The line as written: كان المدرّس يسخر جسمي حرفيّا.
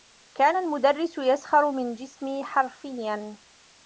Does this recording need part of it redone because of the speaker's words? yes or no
yes